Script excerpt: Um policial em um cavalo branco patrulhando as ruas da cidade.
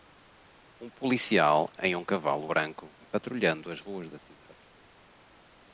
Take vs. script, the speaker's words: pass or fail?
pass